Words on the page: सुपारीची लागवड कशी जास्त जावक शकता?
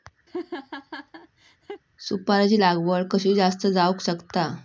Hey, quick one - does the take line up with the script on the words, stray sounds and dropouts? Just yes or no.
no